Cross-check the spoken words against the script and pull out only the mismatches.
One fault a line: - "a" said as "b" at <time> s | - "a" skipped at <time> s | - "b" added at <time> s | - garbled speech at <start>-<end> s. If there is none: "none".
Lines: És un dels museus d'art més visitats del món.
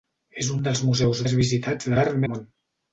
- "d'art" skipped at 1.2 s
- "del" said as "d'art" at 1.9 s